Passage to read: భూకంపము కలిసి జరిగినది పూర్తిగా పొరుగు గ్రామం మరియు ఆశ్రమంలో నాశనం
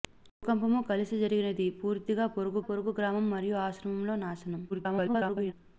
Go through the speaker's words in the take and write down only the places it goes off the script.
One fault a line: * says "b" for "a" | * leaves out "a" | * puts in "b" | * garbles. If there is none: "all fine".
* puts in "పొరుగు"
* garbles